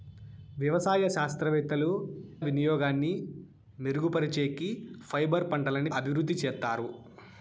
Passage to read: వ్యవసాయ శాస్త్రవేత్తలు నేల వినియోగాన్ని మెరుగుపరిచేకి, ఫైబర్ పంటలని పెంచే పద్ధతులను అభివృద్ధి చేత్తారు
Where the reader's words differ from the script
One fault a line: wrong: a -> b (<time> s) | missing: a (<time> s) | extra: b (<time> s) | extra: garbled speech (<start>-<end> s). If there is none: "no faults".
missing: నేల (1.9 s)
missing: పెంచే పద్ధతులను (5.9 s)